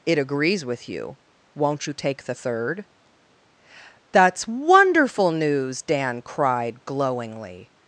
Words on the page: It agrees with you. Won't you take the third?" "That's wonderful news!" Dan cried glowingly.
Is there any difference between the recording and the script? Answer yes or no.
no